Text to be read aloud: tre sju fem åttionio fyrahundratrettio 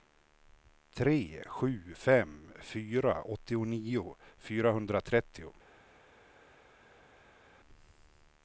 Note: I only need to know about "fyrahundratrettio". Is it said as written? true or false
true